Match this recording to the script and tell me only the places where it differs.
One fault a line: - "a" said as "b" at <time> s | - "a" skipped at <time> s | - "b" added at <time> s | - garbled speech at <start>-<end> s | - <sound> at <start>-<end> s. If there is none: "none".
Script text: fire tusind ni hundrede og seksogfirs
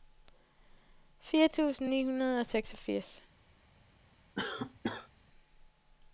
- cough at 4.4-5.1 s